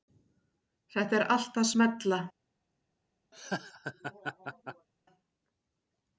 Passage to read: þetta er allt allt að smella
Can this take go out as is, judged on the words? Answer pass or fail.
fail